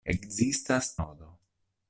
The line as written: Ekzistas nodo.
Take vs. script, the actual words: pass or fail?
pass